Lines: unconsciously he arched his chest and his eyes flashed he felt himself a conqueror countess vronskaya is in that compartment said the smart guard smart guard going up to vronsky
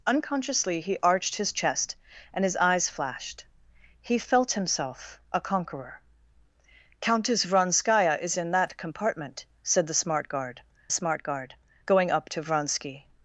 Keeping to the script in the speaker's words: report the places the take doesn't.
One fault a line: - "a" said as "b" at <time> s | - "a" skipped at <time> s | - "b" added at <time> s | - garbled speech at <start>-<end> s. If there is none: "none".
none